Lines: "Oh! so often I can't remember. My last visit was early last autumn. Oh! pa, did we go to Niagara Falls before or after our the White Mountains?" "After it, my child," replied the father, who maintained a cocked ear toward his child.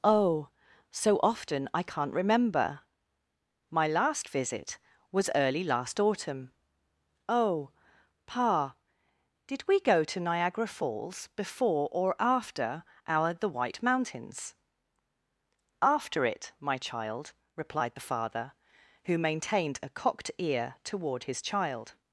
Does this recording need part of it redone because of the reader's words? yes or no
no